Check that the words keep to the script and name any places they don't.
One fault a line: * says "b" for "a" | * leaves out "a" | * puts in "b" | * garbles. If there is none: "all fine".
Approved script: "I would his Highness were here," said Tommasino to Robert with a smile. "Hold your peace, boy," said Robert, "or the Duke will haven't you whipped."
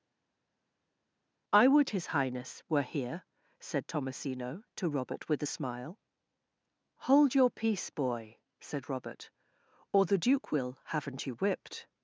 all fine